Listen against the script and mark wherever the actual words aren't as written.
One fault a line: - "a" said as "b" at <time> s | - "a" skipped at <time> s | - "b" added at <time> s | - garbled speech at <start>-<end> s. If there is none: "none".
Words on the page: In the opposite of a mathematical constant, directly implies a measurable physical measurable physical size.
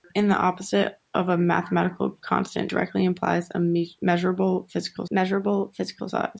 none